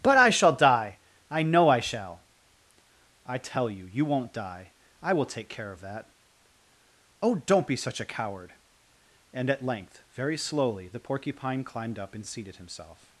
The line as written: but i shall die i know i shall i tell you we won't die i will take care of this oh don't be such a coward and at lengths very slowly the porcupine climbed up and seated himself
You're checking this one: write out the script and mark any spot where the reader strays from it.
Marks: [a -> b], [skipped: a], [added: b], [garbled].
but i shall die i know i shall i tell you [we -> you] won't die i will take care of [this -> that] oh don't be such a coward and at [lengths -> length] very slowly the porcupine climbed up and seated himself